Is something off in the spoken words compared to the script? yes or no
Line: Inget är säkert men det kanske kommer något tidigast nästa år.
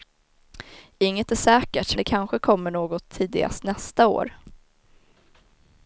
yes